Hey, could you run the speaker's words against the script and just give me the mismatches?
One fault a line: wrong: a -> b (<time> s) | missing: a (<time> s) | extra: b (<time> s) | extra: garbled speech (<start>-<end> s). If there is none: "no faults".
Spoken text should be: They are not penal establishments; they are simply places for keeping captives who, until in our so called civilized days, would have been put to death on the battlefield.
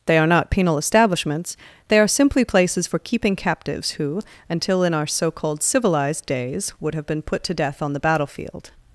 no faults